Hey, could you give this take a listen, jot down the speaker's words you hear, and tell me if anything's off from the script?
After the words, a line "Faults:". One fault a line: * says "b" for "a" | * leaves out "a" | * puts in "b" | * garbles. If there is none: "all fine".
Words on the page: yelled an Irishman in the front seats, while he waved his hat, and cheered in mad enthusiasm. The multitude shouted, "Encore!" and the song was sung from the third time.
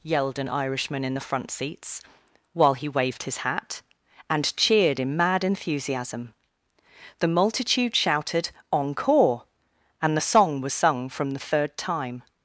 yelled an Irishman in the front seats, while he waved his hat, and cheered in mad enthusiasm. The multitude shouted, "Encore!" and the song was sung from the third time.
Faults:
all fine